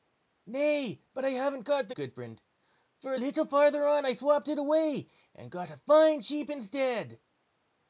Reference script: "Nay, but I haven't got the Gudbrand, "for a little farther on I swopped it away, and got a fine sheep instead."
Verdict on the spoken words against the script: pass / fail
pass